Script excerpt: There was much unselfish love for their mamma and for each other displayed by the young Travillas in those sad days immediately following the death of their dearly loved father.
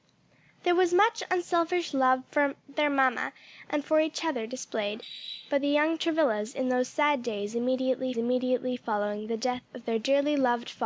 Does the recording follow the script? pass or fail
fail